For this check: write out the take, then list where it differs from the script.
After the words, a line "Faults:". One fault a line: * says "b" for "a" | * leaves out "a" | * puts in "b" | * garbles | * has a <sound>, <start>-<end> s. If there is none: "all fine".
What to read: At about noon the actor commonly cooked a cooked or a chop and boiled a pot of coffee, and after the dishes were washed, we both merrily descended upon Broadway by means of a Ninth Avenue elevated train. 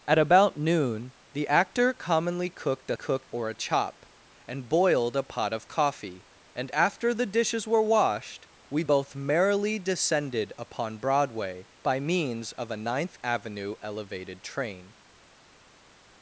At about noon the actor commonly cooked a cooked or a chop and boiled a pot of coffee, and after the dishes were washed, we both merrily descended upon Broadway by means of a Ninth Avenue elevated train.
Faults:
all fine